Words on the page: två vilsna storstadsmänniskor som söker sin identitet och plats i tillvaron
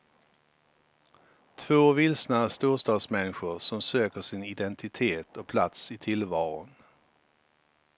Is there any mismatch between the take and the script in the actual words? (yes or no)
no